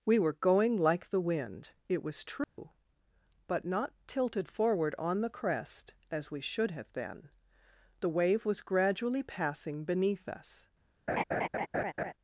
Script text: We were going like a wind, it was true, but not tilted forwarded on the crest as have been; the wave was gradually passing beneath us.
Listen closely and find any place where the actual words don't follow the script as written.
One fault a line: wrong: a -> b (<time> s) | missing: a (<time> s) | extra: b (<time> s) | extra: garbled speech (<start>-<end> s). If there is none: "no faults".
wrong: a -> the (1.1 s)
wrong: forwarded -> forward (4.5 s)
extra: we should (6.3 s)